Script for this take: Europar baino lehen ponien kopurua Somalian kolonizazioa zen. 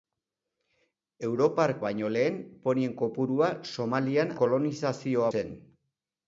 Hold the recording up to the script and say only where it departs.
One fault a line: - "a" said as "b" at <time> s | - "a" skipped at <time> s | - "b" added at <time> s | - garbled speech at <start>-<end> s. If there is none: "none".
none